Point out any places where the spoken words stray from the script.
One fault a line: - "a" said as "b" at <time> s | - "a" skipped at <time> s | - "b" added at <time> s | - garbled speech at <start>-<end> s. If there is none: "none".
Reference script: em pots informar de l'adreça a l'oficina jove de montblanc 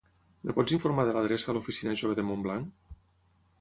none